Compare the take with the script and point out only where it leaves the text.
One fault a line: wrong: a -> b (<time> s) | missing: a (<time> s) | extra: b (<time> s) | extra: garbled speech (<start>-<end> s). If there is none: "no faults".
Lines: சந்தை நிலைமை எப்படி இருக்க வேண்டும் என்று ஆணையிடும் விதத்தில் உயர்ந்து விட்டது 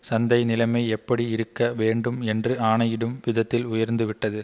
no faults